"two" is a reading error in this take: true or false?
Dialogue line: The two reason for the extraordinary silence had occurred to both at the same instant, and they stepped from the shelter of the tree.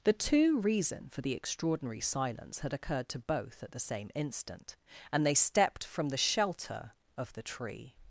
false